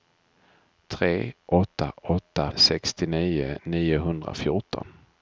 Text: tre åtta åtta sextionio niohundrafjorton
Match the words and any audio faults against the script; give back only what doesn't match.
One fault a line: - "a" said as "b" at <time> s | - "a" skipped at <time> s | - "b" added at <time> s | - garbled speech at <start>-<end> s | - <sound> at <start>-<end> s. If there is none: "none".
none